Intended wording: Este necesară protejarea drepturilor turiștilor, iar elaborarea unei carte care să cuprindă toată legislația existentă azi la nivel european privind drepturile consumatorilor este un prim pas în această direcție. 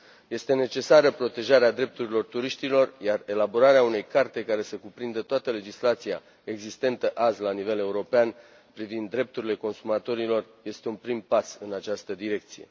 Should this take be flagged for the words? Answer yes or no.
no